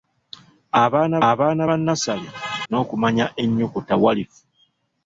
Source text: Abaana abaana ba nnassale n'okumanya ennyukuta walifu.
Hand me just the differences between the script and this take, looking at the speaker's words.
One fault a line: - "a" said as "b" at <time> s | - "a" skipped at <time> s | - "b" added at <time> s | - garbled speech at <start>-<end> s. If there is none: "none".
none